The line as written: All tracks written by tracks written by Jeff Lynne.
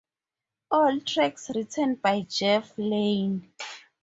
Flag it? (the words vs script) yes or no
yes